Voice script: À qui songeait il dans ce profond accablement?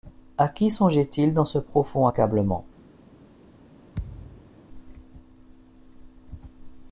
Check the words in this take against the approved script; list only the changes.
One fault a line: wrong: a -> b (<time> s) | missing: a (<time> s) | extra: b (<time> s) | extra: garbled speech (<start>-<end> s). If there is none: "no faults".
no faults